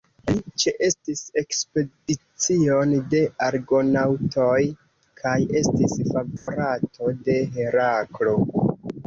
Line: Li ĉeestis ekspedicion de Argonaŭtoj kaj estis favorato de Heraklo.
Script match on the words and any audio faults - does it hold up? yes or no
no